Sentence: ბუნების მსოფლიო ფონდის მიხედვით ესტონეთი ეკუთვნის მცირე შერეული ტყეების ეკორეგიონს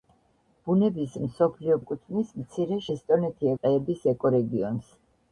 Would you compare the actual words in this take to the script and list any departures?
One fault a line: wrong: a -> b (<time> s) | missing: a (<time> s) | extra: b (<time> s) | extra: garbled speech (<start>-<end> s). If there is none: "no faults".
missing: ფონდის მიხედვით ესტონეთი (1.8 s)
wrong: შერეული -> ესტონეთი (3.0 s)